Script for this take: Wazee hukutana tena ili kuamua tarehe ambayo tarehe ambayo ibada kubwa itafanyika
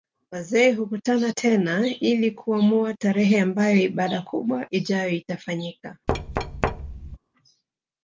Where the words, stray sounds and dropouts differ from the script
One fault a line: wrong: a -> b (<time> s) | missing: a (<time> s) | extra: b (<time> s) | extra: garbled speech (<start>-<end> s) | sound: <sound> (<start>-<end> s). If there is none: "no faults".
missing: tarehe ambayo (3.8 s)
extra: ijayo (4.7 s)
sound: thud (6.1-7.2 s)